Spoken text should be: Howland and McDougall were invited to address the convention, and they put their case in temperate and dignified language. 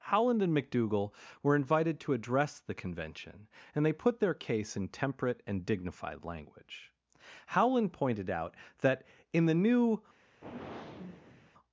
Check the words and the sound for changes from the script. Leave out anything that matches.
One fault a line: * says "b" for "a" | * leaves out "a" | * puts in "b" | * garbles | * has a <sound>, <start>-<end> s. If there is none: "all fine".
* puts in "Howland pointed out that in the new"
* has a sigh, 10.4-11.5 s